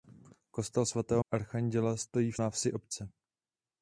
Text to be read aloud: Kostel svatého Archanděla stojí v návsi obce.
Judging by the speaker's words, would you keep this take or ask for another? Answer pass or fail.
pass